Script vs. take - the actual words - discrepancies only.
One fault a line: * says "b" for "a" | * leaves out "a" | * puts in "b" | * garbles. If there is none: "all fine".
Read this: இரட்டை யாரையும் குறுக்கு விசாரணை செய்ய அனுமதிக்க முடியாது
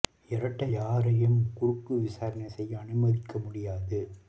all fine